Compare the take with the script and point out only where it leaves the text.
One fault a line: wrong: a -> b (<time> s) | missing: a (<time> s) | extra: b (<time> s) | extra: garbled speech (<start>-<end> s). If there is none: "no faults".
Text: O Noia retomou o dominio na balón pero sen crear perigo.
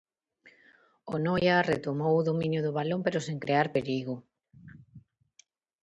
wrong: na -> do (2.7 s)